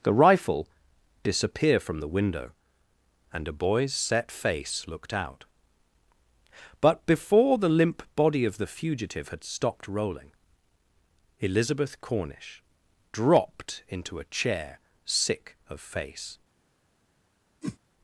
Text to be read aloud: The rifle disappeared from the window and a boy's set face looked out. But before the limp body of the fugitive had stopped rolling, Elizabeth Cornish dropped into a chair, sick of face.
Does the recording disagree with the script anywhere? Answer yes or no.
yes